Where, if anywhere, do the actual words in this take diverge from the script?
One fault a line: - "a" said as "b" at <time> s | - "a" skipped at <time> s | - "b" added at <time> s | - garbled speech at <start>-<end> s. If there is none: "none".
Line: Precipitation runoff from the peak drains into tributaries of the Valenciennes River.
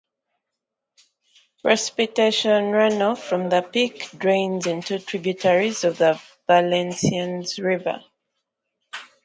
none